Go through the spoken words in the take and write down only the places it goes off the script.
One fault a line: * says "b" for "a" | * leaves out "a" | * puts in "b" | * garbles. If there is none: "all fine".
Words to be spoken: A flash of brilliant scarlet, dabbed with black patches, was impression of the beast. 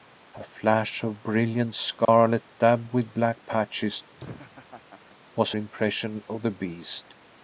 all fine